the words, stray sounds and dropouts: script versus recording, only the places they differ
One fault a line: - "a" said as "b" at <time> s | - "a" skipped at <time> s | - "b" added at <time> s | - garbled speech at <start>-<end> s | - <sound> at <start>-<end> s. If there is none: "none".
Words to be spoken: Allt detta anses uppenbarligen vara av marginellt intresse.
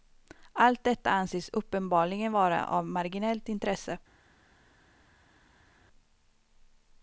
none